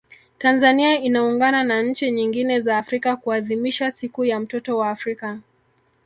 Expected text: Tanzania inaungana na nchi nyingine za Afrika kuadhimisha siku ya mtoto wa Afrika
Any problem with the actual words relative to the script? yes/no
no